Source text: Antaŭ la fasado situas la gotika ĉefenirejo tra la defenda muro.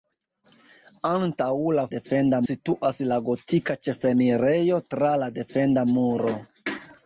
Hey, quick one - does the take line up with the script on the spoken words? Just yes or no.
no